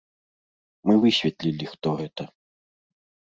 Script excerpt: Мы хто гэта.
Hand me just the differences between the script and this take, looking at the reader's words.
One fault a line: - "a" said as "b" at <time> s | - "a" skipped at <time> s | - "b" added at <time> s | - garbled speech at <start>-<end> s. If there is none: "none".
- "высветлілі" added at 1.0 s